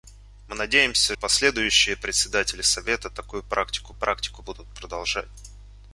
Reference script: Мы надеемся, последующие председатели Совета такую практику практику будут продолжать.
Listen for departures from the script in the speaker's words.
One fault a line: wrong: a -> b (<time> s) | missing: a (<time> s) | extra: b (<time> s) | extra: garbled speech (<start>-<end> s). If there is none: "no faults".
no faults